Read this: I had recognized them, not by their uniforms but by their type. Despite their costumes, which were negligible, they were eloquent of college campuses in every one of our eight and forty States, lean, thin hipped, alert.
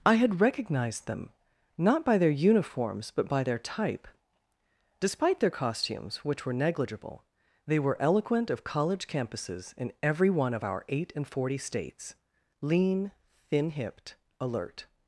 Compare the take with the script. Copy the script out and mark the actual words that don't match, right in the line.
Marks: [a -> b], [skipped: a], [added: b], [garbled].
I had recognized them, not by their uniforms but by their type. Despite their costumes, which were negligible, they were eloquent of college campuses in every one of our eight and forty States, lean, thin hipped, alert.